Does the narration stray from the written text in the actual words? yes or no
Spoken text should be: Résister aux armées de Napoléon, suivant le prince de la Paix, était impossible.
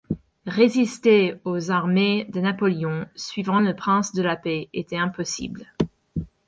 no